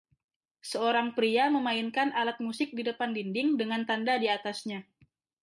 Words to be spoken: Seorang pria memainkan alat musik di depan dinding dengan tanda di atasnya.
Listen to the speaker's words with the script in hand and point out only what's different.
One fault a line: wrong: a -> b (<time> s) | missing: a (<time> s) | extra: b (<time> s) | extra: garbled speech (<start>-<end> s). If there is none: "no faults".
no faults